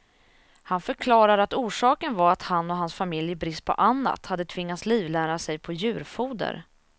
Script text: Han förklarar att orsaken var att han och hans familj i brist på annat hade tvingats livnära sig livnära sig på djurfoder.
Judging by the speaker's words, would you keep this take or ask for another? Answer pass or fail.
fail